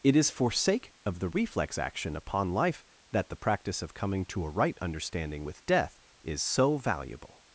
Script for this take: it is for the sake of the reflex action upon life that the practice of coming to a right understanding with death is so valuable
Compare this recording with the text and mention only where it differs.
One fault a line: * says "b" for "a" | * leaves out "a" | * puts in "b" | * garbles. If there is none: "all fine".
* leaves out "the"